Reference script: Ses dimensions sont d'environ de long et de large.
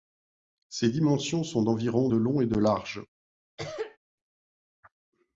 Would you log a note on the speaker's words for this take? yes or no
no